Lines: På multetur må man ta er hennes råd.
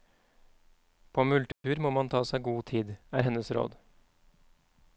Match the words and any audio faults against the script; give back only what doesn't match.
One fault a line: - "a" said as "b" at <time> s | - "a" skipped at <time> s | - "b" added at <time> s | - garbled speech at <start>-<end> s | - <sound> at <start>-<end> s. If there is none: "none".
- dropout at 1.5-1.6 s
- "seg god tid" added at 2.3 s